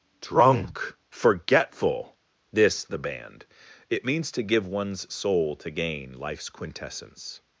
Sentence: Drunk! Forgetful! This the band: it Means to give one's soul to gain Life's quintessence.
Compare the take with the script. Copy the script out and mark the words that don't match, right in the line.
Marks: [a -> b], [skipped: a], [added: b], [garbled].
Drunk! Forgetful! This the band: it Means to give one's soul to gain Life's quintessence.